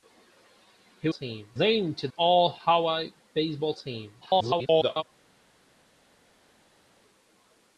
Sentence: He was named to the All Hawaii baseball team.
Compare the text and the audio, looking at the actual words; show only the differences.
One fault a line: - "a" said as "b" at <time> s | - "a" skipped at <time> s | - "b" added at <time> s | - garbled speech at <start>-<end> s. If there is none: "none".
- "was" said as "team" at 1.1 s
- "the" skipped at 2.1 s
- garbled speech at 4.2-5.0 s